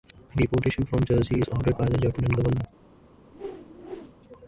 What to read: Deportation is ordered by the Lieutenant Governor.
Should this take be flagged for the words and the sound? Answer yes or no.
yes